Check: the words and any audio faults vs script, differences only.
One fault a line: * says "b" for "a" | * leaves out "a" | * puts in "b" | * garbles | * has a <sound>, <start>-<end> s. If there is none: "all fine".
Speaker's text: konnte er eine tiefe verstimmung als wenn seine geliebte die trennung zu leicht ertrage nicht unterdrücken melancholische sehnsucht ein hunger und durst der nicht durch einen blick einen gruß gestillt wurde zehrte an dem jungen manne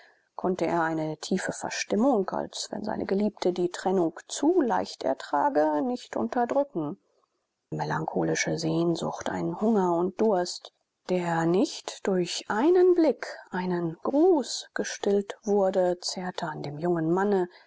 all fine